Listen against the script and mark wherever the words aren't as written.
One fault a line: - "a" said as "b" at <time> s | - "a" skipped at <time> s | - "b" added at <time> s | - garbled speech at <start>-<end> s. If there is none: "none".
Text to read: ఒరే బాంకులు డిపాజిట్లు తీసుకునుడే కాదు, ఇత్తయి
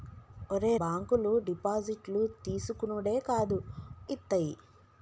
none